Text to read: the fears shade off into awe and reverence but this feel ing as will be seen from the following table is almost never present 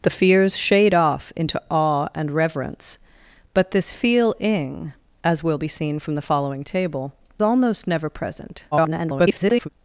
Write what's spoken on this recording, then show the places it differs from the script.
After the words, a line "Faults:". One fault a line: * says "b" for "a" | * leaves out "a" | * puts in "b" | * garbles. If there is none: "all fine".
the fears shade off into awe and reverence but this feel ing as will be seen from the following table almost never present [garbled]
Faults:
* leaves out "is"
* garbles